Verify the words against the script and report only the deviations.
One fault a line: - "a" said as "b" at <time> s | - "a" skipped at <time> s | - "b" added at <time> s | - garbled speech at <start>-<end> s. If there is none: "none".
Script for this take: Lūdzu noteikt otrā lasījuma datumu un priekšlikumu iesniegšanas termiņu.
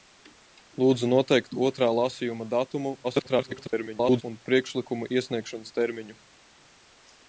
- garbled speech at 3.0-4.2 s